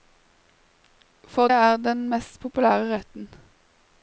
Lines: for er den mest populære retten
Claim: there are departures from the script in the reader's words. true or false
false